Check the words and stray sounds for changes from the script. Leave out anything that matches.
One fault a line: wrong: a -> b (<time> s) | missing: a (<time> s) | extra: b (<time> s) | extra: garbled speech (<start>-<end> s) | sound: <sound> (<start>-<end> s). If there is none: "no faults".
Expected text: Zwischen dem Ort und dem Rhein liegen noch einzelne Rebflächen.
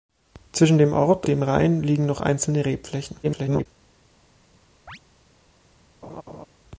missing: und (1.3 s)
extra: garbled speech (3.2-3.7 s)
sound: chirp (4.9-5.0 s)
sound: laugh (6.0-6.5 s)